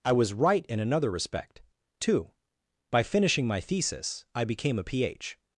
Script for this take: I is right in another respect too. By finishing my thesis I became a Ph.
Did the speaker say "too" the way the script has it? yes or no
yes